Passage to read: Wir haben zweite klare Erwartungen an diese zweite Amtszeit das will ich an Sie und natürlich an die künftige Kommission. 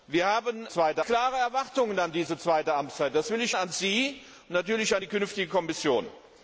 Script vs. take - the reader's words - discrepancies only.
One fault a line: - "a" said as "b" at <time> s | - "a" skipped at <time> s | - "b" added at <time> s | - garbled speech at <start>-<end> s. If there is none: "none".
none